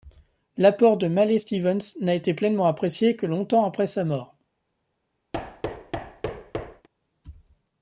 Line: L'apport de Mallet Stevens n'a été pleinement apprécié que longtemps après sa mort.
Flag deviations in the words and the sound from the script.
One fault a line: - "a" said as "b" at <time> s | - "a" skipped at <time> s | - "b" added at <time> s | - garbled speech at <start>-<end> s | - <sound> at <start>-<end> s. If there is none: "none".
- thud at 5.3-6.9 s